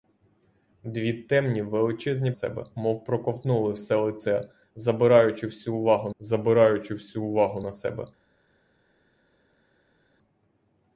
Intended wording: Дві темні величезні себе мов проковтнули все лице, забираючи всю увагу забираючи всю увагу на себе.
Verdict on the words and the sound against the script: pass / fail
pass